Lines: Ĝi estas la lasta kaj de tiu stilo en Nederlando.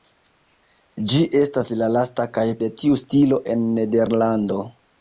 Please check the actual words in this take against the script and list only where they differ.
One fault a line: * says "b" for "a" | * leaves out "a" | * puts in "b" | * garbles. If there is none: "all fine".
all fine